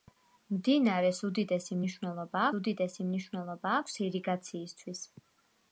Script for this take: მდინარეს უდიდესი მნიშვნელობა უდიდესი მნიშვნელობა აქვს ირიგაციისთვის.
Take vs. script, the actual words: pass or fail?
pass